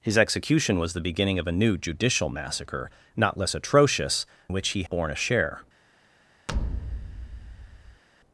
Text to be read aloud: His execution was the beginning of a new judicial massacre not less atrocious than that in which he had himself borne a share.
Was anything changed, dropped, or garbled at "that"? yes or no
yes